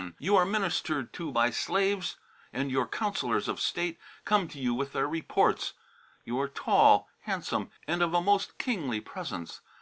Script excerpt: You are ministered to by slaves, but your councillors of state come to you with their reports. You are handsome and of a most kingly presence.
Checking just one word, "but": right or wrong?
wrong